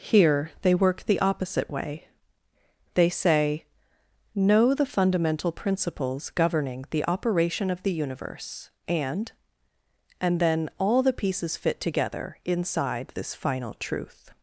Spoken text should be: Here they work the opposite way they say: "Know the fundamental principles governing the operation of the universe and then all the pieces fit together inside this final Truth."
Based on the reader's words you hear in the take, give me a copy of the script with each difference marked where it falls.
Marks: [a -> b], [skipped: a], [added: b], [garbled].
Here they work the opposite way they say: "Know the fundamental principles governing the operation of the universe and [added: and] then all the pieces fit together inside this final Truth."